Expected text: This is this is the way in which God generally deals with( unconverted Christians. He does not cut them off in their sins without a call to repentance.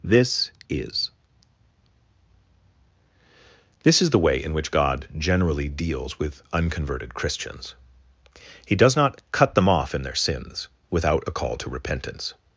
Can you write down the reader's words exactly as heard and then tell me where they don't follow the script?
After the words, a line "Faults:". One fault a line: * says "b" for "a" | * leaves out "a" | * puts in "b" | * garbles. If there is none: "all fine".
This is this is the way in which God generally deals with( unconverted Christians. He does not cut them off in their sins without a call to repentance.
Faults:
all fine